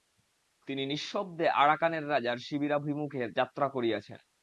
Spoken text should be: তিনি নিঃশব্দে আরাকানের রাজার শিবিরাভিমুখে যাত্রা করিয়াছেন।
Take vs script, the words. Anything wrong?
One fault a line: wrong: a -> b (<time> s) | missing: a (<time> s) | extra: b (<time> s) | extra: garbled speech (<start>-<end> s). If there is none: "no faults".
no faults